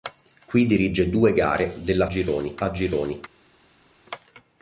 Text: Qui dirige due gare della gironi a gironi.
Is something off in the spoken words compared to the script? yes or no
no